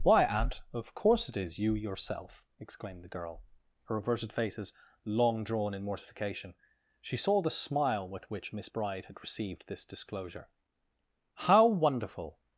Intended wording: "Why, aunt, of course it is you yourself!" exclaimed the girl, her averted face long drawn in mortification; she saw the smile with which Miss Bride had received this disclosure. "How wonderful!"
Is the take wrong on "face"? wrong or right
wrong